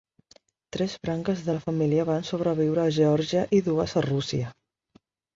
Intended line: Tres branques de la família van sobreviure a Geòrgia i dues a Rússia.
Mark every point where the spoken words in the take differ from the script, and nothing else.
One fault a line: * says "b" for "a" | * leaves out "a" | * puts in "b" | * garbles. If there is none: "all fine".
all fine